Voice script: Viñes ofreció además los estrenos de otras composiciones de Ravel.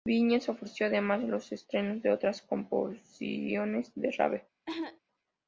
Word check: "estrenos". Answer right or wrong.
right